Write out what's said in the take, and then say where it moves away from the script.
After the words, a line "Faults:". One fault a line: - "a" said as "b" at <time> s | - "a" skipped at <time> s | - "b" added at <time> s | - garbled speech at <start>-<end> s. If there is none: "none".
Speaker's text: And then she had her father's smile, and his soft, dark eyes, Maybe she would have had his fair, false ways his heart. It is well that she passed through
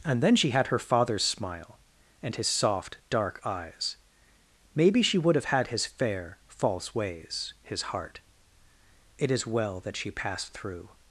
And then she had her father's smile, and his soft, dark eyes, Maybe she would have had his fair, false ways his heart. It is well that she passed through
Faults:
none